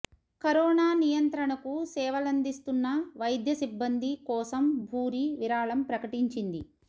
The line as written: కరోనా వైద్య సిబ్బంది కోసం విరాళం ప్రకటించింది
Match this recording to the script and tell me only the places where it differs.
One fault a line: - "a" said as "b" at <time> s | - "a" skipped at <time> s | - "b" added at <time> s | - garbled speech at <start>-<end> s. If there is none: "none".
- "నియంత్రణకు సేవలందిస్తున్న" added at 1.0 s
- "భూరి" added at 4.9 s